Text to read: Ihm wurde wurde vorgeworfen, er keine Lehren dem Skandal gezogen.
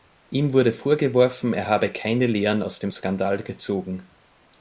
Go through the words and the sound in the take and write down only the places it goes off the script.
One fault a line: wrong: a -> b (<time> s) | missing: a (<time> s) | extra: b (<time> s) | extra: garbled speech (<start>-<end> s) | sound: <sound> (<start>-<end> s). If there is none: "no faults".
missing: wurde (0.7 s)
extra: habe (1.7 s)
extra: aus (2.6 s)